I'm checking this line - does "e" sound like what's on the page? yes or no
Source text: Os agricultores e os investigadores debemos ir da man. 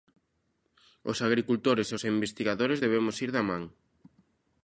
yes